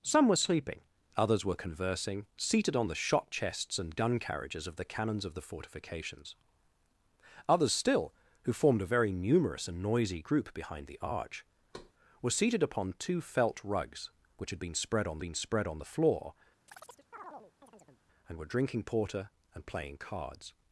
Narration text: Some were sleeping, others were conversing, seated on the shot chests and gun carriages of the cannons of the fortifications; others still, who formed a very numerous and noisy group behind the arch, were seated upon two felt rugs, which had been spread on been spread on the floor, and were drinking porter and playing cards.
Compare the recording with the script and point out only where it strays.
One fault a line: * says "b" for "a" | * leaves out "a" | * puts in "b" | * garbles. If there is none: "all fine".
all fine